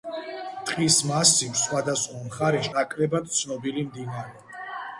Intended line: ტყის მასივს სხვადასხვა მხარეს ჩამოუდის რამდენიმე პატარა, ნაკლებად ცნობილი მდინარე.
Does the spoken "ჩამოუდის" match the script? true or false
false